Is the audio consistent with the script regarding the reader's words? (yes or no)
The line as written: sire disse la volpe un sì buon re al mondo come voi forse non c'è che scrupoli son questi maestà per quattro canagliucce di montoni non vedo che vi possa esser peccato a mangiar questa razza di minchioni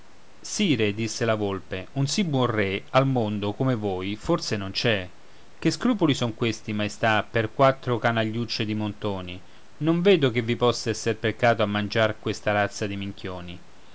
yes